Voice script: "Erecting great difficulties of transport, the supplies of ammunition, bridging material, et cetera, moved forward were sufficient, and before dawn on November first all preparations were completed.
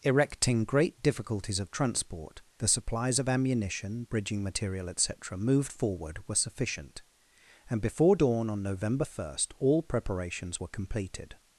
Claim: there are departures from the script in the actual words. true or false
false